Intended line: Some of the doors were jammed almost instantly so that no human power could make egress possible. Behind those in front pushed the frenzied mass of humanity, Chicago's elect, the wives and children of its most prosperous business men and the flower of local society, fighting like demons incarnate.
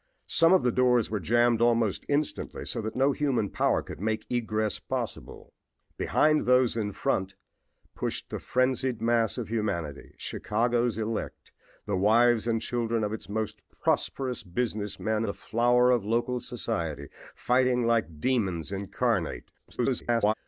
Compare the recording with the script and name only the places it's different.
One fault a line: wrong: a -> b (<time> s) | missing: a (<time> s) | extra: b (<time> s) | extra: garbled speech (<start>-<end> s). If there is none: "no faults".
missing: and (15.2 s)
extra: garbled speech (19.6-20.3 s)